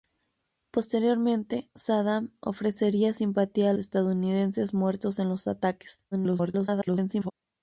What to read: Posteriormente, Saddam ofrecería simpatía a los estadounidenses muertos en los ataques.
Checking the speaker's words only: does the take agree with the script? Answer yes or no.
no